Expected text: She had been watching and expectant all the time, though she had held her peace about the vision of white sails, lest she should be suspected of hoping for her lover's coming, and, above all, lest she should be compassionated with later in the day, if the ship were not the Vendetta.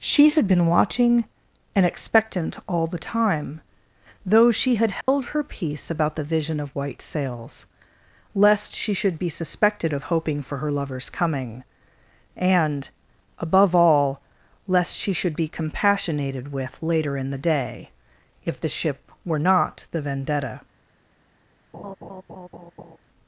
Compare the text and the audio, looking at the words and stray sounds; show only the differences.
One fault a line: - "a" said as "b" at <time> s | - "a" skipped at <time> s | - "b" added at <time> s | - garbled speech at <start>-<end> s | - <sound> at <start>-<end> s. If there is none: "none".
- dropout at 5.0-5.1 s
- laugh at 21.7-23.0 s